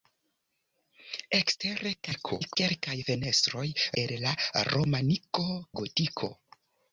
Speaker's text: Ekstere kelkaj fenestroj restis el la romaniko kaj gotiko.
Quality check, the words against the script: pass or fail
fail